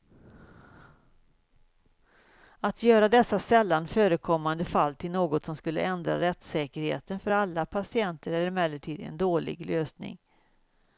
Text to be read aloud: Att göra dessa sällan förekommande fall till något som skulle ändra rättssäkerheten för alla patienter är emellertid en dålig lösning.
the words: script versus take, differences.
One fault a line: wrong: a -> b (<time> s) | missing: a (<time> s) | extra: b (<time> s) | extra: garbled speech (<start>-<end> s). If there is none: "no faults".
no faults